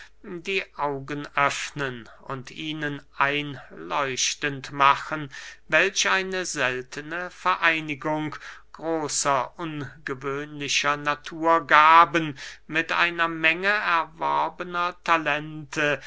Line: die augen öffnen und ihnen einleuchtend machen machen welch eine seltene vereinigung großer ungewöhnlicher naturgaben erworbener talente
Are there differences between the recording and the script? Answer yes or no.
yes